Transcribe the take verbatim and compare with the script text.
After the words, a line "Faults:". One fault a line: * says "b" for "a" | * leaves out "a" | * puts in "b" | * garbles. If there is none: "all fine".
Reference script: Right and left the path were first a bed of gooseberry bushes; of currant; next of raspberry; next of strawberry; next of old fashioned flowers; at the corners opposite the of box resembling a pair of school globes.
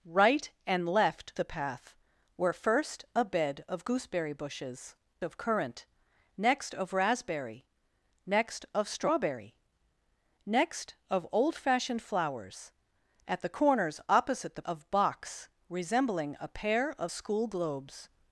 Right and left the path were first a bed of gooseberry bushes; of currant; next of raspberry; next of strawberry; next of old fashioned flowers; at the corners opposite the of box resembling a pair of school globes.
Faults:
all fine